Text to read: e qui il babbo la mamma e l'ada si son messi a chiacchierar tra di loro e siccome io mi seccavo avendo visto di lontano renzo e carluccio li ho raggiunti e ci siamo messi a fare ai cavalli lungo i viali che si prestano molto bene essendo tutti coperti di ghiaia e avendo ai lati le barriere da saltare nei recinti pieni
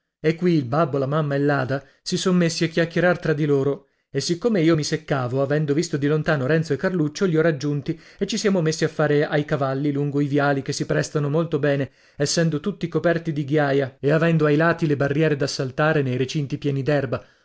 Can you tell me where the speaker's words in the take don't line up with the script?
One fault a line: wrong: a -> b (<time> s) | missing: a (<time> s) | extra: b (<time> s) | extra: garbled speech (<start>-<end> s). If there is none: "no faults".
no faults